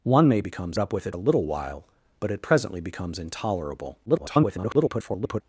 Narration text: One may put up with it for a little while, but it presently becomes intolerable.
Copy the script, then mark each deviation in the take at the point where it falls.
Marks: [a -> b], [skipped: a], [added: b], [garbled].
One may [put -> becomes] up with it [skipped: for] a little while, but it presently becomes intolerable. [garbled]